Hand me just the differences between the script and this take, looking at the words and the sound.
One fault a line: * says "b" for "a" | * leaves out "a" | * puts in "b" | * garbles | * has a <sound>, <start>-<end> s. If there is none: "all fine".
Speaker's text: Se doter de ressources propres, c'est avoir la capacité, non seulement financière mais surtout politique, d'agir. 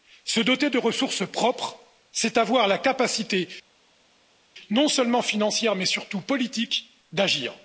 all fine